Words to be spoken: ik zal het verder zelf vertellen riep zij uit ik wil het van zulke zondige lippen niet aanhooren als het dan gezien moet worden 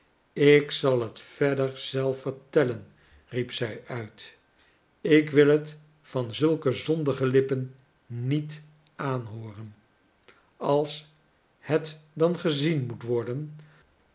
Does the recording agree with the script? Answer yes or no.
yes